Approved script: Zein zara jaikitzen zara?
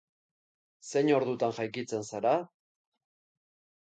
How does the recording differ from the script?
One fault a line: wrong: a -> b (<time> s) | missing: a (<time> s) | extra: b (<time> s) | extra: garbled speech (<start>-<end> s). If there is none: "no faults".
wrong: zara -> ordutan (1.2 s)